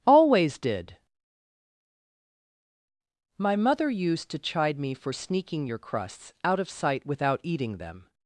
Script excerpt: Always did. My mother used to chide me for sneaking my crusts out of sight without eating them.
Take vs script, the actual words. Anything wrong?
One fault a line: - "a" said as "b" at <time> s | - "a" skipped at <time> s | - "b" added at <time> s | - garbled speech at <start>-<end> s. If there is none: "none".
- "my" said as "your" at 5.7 s